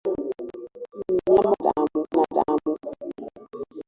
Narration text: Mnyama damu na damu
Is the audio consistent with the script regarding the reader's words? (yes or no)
yes